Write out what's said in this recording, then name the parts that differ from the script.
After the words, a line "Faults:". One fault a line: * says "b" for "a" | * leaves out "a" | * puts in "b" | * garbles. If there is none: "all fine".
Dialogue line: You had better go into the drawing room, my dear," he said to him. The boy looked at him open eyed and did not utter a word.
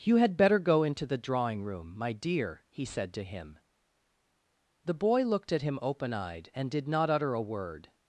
You had better go into the drawing room, my dear," he said to him. The boy looked at him open eyed and did not utter a word.
Faults:
all fine